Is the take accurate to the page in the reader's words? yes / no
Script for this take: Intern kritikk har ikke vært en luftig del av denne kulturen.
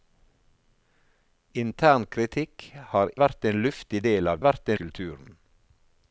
no